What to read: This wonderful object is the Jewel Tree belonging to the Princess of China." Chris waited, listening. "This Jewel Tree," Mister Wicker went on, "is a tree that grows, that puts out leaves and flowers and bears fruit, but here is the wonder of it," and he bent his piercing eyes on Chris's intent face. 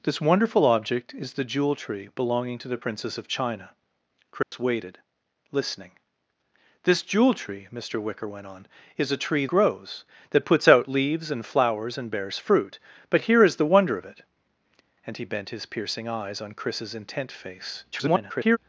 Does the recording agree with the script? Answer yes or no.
no